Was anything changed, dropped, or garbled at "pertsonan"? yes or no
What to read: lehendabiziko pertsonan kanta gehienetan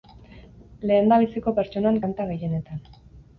no